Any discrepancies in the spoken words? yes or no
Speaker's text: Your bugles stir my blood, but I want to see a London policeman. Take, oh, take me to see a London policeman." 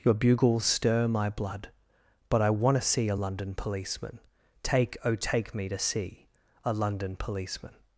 no